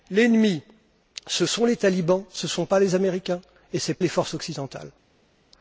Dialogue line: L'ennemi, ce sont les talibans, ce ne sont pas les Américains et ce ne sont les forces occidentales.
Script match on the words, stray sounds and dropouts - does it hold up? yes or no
yes